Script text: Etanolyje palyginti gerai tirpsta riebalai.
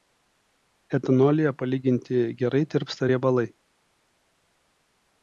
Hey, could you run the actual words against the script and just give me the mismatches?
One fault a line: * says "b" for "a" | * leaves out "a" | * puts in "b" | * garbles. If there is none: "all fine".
all fine